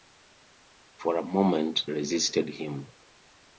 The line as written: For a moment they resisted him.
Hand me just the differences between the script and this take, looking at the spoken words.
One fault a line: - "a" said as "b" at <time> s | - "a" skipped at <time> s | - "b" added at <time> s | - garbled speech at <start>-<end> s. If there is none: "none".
- "they" skipped at 1.9 s